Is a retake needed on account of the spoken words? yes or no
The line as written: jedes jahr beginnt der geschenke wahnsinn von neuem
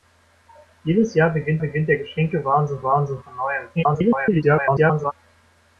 yes